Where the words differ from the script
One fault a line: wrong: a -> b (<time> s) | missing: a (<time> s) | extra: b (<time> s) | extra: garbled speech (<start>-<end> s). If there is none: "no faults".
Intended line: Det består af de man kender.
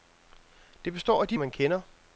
no faults